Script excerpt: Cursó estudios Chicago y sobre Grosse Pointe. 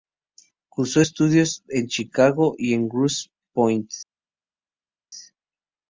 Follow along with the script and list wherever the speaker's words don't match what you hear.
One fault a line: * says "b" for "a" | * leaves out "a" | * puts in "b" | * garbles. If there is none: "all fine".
* puts in "en"
* says "en" for "sobre"